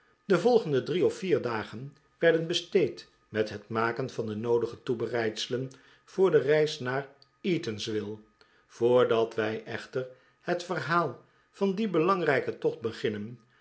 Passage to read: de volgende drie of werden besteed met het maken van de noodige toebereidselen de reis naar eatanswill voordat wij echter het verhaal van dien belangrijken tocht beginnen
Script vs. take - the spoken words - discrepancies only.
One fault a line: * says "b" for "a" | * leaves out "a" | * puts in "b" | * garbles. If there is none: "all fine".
* puts in "vier dagen"
* puts in "voor"